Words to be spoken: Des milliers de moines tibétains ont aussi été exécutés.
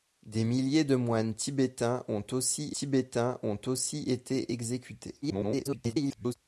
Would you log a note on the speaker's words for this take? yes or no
yes